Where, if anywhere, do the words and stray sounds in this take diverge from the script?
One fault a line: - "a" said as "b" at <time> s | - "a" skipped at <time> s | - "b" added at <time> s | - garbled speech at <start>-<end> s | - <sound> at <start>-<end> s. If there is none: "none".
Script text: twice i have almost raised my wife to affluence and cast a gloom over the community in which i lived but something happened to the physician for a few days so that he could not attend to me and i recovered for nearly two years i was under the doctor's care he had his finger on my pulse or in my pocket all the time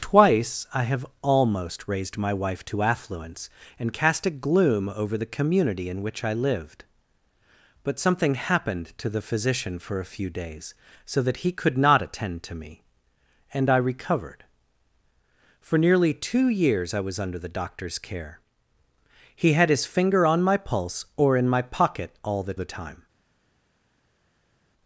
- "the" added at 22.5 s